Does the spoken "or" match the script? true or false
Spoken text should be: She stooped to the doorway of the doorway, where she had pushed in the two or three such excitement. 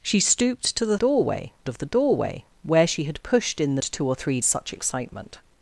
true